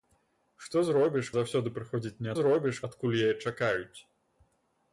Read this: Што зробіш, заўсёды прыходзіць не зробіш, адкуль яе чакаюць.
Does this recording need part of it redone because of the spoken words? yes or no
no